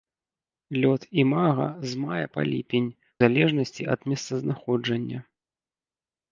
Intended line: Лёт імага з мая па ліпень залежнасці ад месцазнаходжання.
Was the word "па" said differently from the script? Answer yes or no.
no